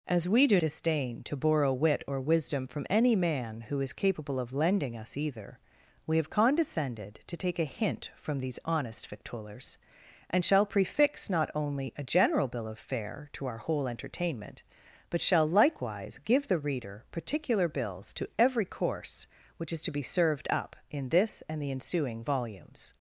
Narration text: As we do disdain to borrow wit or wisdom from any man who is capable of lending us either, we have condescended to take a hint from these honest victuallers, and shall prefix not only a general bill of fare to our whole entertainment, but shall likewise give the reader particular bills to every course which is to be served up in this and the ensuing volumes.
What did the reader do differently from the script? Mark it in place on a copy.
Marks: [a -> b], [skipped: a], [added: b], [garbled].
As we do disdain to borrow wit or wisdom from any man who is capable of lending us either, we have condescended to take a hint from these honest victuallers, and shall prefix not only a general bill of fare to our whole entertainment, but shall likewise give the reader particular bills to every course which is to be served up in this and the ensuing volumes.